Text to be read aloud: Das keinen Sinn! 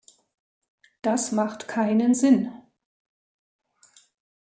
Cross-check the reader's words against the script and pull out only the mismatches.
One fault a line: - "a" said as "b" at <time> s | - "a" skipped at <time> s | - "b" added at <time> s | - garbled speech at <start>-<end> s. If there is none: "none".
- "macht" added at 1.3 s